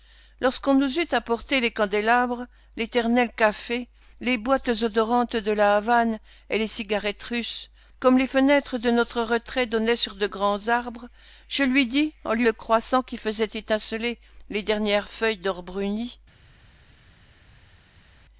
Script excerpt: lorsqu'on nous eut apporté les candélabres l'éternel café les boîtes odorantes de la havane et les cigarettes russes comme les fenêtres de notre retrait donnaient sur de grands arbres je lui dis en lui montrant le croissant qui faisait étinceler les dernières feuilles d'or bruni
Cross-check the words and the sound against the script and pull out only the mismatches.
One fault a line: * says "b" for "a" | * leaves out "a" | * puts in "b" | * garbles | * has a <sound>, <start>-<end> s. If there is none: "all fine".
* leaves out "montrant"